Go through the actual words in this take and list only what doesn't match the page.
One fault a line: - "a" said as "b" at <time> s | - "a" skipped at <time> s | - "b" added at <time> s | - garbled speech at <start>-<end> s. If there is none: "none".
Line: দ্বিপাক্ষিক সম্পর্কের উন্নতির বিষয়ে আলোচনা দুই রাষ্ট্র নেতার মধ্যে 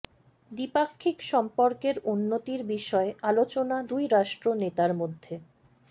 none